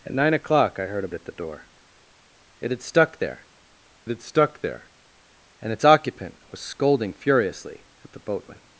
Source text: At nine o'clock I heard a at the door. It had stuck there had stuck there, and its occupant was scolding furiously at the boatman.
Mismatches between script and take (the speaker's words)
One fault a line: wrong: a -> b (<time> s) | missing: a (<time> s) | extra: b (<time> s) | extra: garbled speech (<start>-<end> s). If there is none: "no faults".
no faults